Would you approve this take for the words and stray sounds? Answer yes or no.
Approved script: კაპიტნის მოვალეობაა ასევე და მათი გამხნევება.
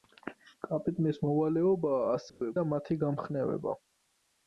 no